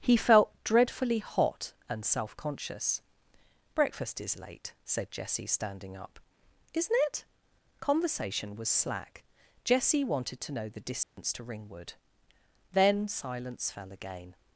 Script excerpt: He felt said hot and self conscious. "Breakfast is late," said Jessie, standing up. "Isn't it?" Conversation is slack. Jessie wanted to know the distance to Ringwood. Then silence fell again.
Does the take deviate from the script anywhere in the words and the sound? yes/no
yes